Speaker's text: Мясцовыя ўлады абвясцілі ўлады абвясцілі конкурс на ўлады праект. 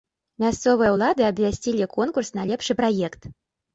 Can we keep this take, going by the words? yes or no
no